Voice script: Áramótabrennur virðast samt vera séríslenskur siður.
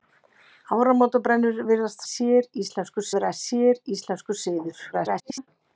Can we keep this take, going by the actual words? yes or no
no